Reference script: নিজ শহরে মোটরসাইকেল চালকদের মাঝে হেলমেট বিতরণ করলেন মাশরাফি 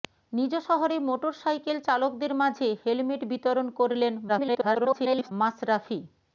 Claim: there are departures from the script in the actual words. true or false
true